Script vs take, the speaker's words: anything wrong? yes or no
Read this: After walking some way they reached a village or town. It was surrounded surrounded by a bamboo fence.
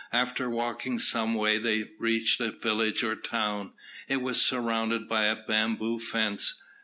yes